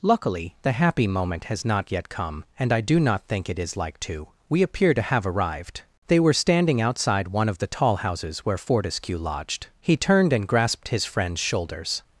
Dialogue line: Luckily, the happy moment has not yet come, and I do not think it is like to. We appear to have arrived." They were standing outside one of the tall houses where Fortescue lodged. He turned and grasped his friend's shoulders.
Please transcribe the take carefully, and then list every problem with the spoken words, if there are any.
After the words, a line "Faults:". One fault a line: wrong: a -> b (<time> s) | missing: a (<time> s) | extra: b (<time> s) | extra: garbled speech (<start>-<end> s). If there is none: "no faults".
Luckily, the happy moment has not yet come, and I do not think it is like to. We appear to have arrived." They were standing outside one of the tall houses where Fortescue lodged. He turned and grasped his friend's shoulders.
Faults:
no faults